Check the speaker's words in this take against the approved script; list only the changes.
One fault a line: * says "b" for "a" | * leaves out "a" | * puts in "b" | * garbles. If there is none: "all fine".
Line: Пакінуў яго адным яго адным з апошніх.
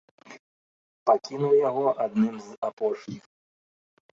* leaves out "яго адным"